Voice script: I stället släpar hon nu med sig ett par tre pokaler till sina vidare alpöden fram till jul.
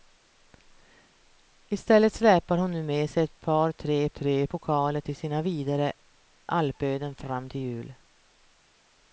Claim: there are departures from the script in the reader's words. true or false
true